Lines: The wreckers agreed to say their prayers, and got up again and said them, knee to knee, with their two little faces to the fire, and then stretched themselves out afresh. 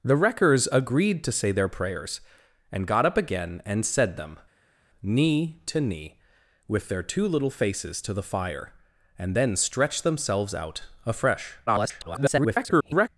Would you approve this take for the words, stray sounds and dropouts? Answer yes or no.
no